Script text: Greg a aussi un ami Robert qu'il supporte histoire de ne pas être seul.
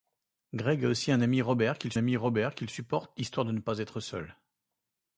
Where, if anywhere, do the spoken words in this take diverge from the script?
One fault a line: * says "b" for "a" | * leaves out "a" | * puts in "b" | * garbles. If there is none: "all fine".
* puts in "ami Robert qu'il"